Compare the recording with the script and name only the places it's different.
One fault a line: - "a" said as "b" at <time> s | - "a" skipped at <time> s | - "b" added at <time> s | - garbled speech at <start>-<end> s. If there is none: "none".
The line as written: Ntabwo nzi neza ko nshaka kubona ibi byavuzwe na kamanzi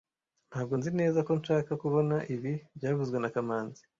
none